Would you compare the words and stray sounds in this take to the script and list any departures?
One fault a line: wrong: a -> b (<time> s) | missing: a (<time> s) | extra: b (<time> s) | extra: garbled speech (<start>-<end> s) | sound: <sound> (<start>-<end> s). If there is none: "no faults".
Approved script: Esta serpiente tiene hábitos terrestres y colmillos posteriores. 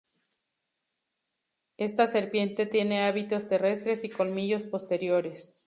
no faults